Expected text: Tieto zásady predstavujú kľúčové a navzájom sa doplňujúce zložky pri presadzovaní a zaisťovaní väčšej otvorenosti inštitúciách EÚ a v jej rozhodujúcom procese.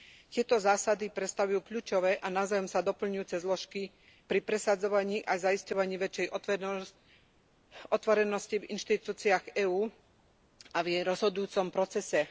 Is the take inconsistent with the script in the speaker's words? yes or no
yes